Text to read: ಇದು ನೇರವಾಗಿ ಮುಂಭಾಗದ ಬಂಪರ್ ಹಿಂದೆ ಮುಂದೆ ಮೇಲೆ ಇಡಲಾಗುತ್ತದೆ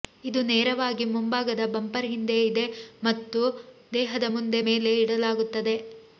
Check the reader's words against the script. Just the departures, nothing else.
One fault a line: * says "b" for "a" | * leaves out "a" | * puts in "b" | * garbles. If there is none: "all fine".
* puts in "ಇದೆ ಮತ್ತು ದೇಹದ"